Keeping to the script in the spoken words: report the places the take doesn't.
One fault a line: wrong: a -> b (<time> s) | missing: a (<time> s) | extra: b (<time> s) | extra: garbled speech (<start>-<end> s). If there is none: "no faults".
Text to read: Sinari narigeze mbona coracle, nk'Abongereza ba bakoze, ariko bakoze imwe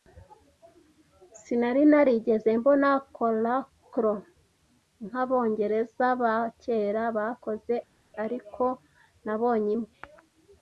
extra: kera (6.6 s)
wrong: bakoze -> nabonye (9.2 s)